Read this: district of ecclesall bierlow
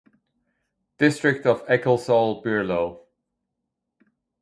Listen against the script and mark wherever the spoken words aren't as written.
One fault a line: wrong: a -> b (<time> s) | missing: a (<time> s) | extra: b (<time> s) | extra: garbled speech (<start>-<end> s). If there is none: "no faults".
no faults